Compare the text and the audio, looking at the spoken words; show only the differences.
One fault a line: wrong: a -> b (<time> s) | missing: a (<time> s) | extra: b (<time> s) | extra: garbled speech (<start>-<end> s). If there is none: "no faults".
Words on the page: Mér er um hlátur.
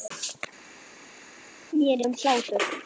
no faults